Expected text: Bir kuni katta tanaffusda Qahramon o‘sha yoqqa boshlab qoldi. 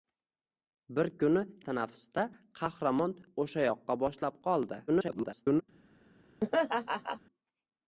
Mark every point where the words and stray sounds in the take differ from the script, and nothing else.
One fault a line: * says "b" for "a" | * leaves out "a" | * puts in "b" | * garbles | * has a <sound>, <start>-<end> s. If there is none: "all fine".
* leaves out "katta"
* garbles
* has a laugh, 6.4-7.2 s